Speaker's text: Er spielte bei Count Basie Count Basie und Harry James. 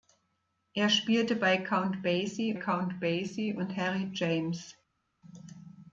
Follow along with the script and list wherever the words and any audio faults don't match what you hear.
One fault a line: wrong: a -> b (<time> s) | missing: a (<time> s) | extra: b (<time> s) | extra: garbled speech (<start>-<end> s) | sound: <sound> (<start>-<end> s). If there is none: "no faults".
no faults